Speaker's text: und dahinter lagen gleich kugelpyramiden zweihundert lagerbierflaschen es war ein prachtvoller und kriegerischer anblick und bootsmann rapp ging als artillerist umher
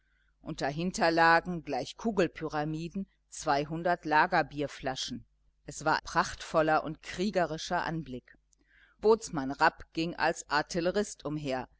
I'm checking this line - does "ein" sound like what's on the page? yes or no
no